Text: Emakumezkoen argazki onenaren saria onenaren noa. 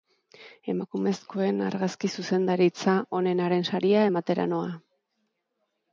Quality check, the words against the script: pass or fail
fail